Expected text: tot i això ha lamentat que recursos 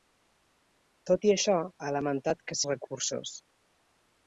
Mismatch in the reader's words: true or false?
false